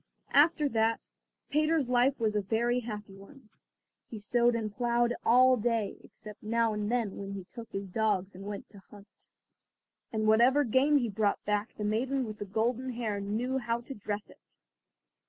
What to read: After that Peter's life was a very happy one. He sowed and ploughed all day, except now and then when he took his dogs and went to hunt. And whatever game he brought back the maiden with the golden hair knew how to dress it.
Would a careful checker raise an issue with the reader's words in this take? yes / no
no